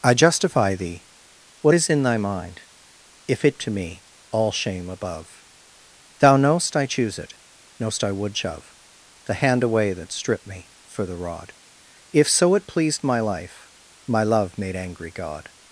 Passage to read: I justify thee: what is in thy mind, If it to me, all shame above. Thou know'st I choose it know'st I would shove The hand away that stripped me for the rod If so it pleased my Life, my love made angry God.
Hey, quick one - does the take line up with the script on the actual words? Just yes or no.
yes